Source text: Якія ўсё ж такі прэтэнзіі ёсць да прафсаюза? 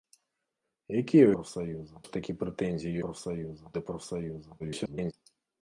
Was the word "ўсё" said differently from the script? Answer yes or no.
yes